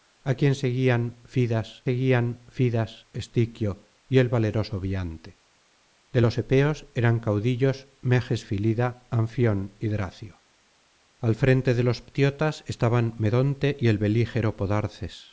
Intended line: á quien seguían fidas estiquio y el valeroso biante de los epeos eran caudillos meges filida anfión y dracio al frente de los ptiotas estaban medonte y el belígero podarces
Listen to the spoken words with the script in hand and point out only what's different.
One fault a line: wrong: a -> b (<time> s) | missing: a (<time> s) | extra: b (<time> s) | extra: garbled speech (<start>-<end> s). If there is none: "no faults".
extra: seguían fidas (1.9 s)